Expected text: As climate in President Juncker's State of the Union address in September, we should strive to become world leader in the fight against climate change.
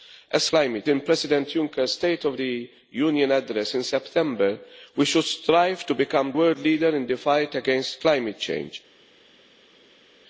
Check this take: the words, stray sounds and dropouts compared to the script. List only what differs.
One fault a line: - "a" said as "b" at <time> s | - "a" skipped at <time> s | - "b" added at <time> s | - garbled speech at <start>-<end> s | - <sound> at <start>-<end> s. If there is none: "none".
none